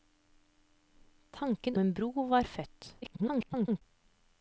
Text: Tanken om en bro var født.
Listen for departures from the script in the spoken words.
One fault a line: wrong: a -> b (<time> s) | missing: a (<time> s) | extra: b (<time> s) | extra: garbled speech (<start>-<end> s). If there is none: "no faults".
missing: om (1.8 s)
extra: garbled speech (3.0-3.8 s)